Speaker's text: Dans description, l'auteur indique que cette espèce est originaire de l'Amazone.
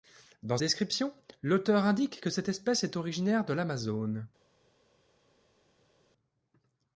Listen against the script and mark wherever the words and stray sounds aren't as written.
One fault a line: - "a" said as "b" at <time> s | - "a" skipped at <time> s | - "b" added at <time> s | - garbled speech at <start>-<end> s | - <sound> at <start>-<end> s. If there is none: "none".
none